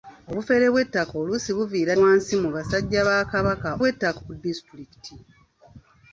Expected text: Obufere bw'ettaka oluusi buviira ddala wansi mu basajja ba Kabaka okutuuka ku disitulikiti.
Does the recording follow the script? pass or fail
fail